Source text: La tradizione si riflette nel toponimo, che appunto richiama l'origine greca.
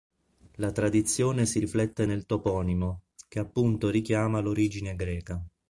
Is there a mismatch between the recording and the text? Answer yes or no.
no